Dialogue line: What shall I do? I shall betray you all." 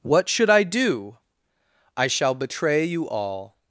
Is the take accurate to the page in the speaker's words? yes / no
no